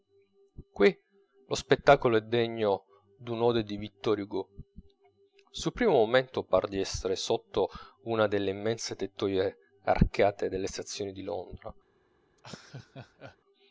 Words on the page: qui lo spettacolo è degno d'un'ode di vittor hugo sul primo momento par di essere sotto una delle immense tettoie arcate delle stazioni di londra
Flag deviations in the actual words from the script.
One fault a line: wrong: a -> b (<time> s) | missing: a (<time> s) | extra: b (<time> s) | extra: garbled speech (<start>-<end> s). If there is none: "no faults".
no faults